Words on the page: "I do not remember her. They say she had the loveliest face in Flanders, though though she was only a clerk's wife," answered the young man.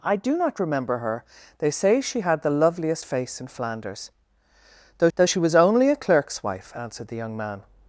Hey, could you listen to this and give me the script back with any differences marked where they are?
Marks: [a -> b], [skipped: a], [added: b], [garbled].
"I do not remember her. They say she had the loveliest face in Flanders, though though she was only a clerk's wife," answered the young man.